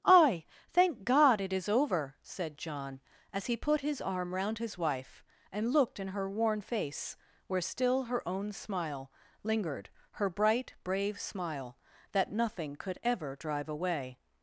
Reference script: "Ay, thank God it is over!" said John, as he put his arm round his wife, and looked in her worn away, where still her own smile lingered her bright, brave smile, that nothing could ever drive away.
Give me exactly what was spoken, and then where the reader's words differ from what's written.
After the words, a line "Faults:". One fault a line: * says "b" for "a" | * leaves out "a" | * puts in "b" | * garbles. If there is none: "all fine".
"Ay, thank God it is over!" said John, as he put his arm round his wife, and looked in her worn face, where still her own smile lingered her bright, brave smile, that nothing could ever drive away.
Faults:
* says "face" for "away"